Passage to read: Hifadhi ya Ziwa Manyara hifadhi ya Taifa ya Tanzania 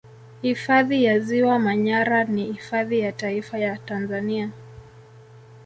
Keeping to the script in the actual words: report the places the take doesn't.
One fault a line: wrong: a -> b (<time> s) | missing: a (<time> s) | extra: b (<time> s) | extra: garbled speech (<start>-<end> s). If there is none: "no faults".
extra: ni (2.2 s)